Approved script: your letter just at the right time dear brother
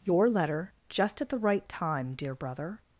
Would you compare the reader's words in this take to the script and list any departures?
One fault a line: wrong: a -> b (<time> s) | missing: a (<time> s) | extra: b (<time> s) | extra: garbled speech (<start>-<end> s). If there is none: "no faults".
no faults